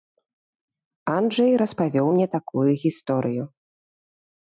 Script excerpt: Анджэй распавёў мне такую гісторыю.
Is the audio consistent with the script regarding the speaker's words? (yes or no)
yes